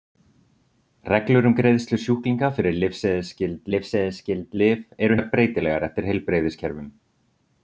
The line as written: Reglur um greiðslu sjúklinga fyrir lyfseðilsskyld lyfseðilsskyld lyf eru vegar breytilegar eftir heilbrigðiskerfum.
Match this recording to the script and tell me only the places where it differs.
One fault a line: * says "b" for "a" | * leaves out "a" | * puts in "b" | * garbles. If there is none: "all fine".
all fine